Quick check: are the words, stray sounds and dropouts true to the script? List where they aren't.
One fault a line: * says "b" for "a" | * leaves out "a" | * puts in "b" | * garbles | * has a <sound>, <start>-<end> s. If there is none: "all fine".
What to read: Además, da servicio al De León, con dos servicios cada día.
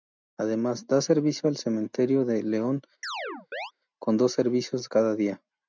* puts in "Cementerio"
* has a chirp, 3.0-3.7 s